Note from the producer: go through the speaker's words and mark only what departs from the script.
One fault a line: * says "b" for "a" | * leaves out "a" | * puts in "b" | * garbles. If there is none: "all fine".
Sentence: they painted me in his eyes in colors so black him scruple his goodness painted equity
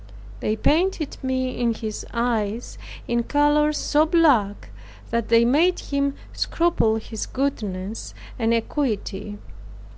* puts in "that they made"
* says "and" for "painted"